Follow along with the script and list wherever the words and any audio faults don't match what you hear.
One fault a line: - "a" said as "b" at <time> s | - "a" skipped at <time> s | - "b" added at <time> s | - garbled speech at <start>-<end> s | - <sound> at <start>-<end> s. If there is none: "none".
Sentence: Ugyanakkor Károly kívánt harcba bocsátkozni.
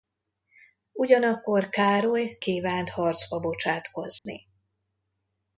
- dropout at 4.2-4.3 s